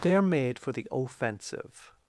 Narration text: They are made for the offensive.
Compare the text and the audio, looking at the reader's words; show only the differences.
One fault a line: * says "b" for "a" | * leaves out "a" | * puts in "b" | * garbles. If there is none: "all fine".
all fine